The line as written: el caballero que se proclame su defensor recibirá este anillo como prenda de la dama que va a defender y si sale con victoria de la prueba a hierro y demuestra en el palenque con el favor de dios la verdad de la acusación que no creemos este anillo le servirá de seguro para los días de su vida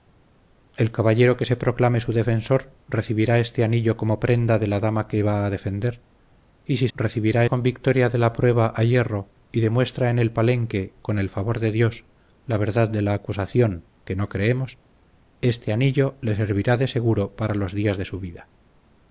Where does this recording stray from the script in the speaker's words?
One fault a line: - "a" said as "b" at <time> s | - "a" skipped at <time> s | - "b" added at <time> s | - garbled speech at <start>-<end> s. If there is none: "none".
- "sale" said as "recibirá" at 6.9 s